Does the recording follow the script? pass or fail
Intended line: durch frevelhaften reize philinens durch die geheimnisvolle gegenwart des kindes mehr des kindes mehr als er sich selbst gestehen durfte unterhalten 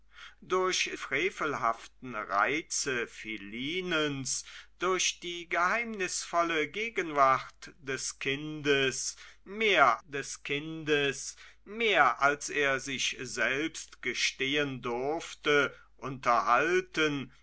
pass